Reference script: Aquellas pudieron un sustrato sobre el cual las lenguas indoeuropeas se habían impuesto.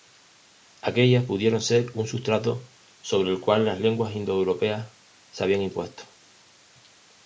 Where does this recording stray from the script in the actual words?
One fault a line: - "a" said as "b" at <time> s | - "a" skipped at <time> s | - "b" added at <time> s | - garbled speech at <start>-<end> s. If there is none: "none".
- "ser" added at 1.6 s